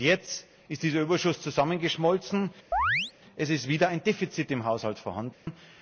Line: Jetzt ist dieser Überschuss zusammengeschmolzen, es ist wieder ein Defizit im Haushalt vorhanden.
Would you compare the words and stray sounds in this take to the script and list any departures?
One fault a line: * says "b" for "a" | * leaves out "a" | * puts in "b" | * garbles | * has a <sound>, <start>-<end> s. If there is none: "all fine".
* has a chirp, 2.7-3.1 s
* has a dropout, 5.3-5.5 s